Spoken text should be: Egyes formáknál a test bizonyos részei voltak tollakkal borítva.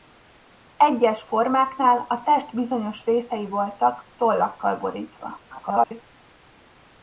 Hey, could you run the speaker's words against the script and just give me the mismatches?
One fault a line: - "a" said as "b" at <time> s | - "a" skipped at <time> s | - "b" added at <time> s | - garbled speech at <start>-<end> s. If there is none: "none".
- garbled speech at 5.5-6.0 s